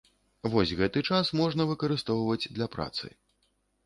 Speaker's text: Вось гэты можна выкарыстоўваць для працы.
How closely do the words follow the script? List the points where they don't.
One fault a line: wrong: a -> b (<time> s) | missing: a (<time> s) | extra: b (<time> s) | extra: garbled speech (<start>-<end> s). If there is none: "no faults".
extra: час (1.1 s)